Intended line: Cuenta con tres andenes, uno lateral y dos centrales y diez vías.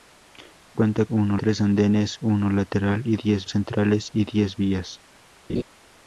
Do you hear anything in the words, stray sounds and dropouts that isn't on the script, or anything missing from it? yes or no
yes